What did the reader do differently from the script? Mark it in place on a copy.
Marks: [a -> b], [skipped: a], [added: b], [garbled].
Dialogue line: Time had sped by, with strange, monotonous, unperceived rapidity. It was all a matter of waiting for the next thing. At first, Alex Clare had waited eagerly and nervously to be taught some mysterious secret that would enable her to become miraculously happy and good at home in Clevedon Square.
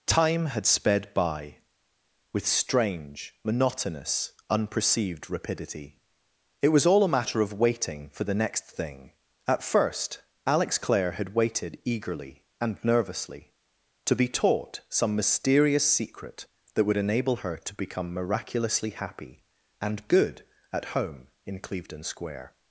Time had sped by, with strange, monotonous, unperceived rapidity. It was all a matter of waiting for the next thing. At first, Alex Clare had waited eagerly and nervously to be taught some mysterious secret that would enable her to become miraculously happy and good at home in Clevedon Square.